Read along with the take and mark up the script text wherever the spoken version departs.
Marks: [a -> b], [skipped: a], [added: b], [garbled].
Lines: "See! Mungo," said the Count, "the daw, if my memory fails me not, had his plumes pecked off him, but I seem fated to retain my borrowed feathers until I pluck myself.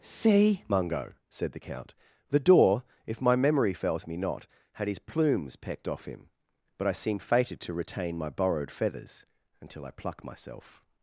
"See! Mungo," said the Count, "the daw, if my memory fails me not, had his plumes pecked off him, but I seem fated to retain my borrowed feathers until I pluck myself.